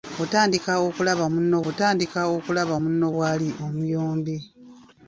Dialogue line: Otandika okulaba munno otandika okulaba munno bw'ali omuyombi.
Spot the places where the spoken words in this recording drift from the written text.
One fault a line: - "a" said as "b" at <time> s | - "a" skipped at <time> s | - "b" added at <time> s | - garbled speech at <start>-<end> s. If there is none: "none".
none